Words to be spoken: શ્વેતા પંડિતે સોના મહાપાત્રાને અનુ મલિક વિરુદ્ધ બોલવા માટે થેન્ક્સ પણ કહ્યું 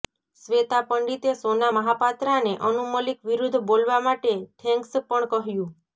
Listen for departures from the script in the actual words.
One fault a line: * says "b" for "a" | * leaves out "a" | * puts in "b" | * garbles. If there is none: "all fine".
all fine